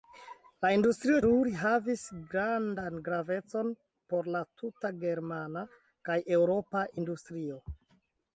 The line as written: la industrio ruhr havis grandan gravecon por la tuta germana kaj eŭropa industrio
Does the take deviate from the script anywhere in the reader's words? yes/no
no